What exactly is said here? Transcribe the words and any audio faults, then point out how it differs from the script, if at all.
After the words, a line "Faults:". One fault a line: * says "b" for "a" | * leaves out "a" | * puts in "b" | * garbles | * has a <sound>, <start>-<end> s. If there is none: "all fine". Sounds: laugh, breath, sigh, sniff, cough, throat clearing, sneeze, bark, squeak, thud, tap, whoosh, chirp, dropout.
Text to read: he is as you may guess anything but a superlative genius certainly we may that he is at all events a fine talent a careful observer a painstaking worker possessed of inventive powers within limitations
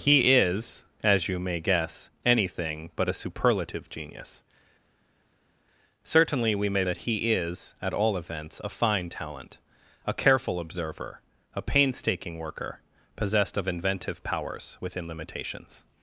he is as you may guess anything but a superlative genius certainly we may that he is at all events a fine talent a careful observer a painstaking worker possessed of inventive powers within limitations
Faults:
all fine